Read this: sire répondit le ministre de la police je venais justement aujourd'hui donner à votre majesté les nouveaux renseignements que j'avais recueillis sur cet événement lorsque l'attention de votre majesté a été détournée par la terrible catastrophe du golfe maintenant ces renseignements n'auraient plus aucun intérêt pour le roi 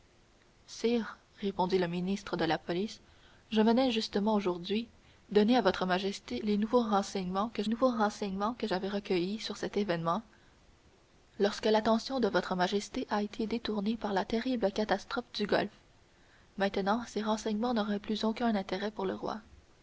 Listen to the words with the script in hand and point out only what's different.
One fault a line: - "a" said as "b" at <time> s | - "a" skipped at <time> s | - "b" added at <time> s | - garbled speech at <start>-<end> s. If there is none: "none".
- "nouveaux renseignements que" added at 7.7 s